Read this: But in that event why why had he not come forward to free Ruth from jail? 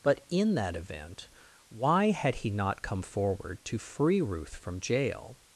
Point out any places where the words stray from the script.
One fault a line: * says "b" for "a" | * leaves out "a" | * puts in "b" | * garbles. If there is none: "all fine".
* leaves out "why"